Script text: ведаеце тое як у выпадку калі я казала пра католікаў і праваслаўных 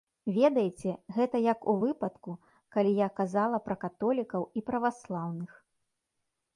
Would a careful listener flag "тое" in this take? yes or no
yes